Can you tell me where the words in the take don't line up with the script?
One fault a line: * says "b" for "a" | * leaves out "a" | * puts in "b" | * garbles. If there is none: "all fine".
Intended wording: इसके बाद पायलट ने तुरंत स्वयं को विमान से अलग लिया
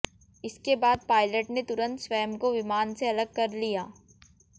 * puts in "कर"